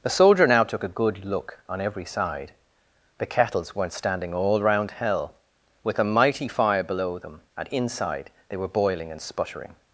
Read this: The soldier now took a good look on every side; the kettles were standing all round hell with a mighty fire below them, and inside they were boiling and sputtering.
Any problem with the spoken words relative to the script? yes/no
yes